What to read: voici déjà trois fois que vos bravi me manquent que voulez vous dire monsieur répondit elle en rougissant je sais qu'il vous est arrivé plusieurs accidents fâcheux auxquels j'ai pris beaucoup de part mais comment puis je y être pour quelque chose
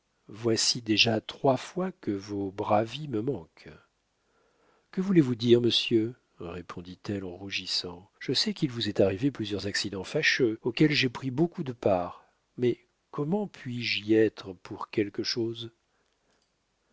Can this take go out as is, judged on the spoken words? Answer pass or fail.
pass